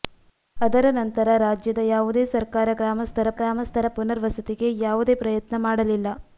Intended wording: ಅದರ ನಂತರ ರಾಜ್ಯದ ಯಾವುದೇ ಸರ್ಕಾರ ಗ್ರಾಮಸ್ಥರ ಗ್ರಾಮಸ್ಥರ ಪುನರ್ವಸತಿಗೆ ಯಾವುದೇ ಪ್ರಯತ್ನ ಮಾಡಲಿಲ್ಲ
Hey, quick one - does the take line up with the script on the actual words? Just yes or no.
yes